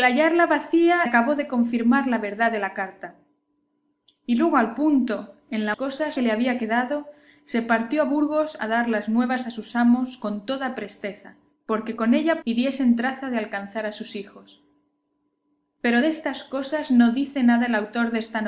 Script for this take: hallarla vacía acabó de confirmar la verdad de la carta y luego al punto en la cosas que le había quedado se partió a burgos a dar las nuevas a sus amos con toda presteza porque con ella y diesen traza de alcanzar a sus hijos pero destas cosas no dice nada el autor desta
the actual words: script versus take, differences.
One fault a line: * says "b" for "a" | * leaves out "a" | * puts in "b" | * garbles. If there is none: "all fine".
all fine